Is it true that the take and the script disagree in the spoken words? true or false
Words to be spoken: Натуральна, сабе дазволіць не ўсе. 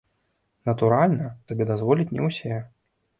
false